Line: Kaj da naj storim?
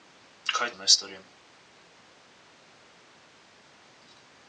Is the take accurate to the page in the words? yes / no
yes